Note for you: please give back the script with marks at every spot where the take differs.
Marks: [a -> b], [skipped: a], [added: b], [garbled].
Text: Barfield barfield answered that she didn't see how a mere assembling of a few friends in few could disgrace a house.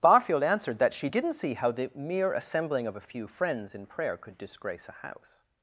Barfield [skipped: barfield] answered that she didn't see how [a -> the] mere assembling of a few friends in [few -> prayer] could disgrace a house.